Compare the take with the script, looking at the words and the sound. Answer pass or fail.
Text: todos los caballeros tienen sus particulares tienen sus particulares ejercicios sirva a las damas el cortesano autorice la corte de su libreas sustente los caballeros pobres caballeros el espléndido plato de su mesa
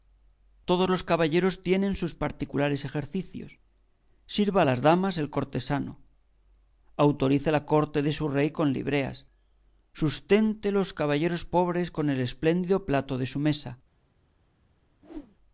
fail